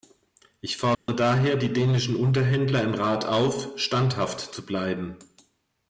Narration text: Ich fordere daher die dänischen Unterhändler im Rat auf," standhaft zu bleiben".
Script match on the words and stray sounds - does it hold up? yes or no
no